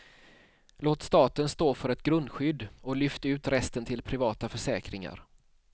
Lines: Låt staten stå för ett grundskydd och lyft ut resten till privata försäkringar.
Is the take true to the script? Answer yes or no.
yes